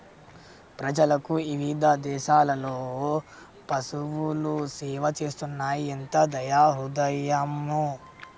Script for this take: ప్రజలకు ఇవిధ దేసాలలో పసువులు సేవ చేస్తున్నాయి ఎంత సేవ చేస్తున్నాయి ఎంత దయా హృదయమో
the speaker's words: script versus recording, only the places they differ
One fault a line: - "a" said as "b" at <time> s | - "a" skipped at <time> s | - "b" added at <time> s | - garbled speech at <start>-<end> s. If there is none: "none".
- "సేవ చేస్తున్నాయి ఎంత" skipped at 6.2 s